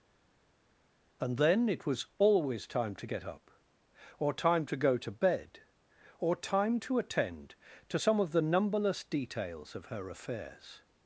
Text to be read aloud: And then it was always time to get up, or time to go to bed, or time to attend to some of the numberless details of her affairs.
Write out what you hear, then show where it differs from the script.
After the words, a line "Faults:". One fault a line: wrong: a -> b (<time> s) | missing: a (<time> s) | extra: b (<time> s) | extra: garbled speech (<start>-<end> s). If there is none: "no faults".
And then it was always time to get up, or time to go to bed, or time to attend to some of the numberless details of her affairs.
Faults:
no faults